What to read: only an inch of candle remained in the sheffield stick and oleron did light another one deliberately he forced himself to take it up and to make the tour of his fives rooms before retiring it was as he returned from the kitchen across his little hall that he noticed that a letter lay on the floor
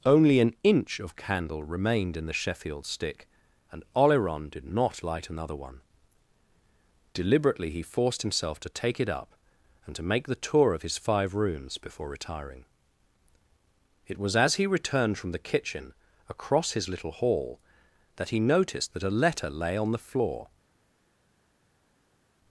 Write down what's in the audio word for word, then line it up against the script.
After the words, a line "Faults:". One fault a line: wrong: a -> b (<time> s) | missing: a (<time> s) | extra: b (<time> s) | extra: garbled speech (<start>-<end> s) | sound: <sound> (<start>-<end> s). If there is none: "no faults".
only an inch of candle remained in the sheffield stick and oleron did not light another one deliberately he forced himself to take it up and to make the tour of his five rooms before retiring it was as he returned from the kitchen across his little hall that he noticed that a letter lay on the floor
Faults:
extra: not (4.7 s)
wrong: fives -> five (11.0 s)